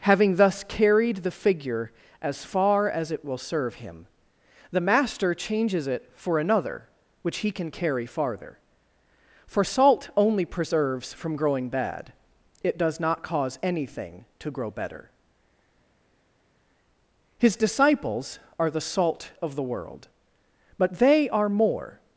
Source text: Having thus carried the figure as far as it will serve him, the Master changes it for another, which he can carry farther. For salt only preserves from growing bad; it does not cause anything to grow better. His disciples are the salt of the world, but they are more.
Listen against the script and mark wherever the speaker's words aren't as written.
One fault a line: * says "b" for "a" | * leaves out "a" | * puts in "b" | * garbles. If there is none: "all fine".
all fine